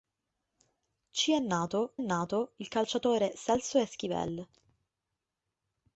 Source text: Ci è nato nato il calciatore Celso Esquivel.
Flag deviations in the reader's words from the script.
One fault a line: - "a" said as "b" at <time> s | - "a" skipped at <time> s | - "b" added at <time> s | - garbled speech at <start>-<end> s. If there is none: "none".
none